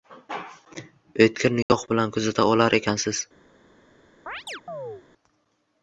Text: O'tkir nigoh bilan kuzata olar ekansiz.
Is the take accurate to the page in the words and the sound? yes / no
no